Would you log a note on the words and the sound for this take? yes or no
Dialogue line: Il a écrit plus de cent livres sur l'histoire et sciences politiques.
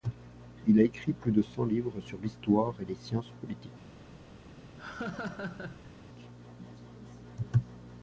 yes